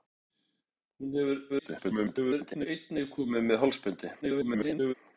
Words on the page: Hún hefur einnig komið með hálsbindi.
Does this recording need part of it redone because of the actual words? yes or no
yes